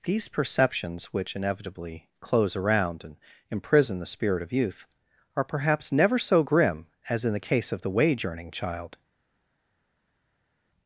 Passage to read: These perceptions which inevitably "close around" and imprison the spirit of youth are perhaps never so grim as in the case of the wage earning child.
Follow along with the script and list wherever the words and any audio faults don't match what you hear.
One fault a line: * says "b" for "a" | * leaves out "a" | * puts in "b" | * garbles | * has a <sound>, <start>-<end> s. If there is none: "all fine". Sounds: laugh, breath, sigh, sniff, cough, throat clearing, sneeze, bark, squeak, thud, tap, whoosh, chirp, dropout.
all fine